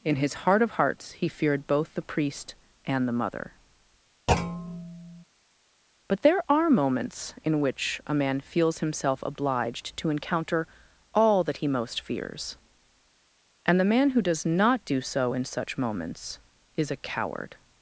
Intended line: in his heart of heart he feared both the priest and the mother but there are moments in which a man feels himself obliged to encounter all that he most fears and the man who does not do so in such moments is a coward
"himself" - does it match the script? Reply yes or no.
yes